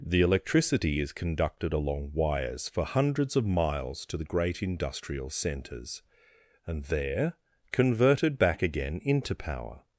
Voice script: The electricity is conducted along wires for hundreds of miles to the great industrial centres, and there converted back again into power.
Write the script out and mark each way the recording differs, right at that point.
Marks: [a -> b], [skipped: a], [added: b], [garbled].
The electricity is conducted along wires for hundreds of miles to the great industrial centres, and there converted back again into power.